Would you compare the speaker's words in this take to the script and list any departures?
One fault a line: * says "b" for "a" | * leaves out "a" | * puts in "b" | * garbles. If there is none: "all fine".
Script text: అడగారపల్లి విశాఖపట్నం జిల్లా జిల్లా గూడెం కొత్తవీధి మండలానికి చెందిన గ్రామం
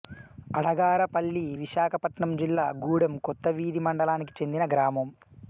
* leaves out "జిల్లా"